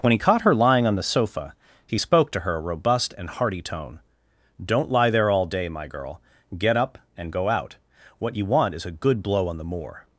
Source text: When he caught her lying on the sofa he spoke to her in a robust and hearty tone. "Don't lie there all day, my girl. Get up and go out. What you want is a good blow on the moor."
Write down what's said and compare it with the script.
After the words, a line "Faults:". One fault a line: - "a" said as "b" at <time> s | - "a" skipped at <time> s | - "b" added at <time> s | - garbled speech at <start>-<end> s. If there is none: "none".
When he caught her lying on the sofa he spoke to her a robust and hearty tone. "Don't lie there all day, my girl. Get up and go out. What you want is a good blow on the moor."
Faults:
- "in" skipped at 2.6 s